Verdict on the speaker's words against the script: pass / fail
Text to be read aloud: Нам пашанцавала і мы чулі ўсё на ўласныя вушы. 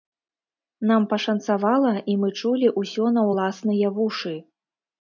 pass